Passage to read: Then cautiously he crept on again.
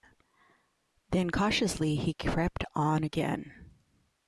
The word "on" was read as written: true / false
true